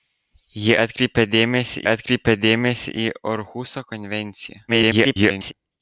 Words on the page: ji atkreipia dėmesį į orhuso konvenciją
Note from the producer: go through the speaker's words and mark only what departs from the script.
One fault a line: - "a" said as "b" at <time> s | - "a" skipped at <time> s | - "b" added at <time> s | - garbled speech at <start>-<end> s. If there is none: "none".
- "atkreipia dėmesį" added at 1.9 s
- garbled speech at 4.7-5.5 s